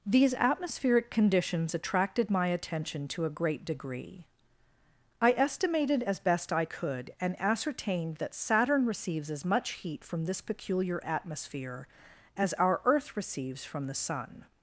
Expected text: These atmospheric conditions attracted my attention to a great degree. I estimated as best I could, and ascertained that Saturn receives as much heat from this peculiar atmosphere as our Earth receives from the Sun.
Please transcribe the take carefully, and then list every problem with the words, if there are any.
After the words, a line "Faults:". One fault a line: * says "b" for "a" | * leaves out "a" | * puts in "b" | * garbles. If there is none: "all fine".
These atmospheric conditions attracted my attention to a great degree. I estimated as best I could, and ascertained that Saturn receives as much heat from this peculiar atmosphere as our Earth receives from the Sun.
Faults:
all fine